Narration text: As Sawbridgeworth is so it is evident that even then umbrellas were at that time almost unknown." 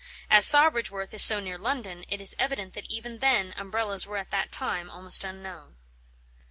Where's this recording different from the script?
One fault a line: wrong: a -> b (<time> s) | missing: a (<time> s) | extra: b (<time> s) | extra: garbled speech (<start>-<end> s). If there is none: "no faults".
extra: near London (1.4 s)